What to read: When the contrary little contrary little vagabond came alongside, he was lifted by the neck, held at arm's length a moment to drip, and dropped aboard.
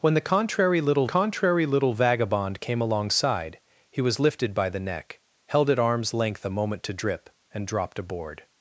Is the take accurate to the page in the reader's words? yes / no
yes